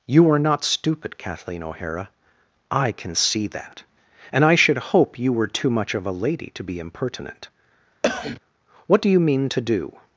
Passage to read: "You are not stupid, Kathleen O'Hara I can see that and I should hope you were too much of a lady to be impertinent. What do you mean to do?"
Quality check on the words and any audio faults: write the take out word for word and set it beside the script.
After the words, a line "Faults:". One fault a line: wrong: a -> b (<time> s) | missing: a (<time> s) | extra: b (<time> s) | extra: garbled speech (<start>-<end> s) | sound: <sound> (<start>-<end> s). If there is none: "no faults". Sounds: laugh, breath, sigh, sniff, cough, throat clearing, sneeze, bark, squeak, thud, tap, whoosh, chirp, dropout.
"You are not stupid, Kathleen O'Hara I can see that and I should hope you were too much of a lady to be impertinent. What do you mean to do?"
Faults:
sound: cough (8.0-8.4 s)